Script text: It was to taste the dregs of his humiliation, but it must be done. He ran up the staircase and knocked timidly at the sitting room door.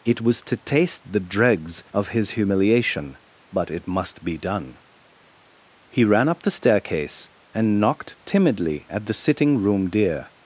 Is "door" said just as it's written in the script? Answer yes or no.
no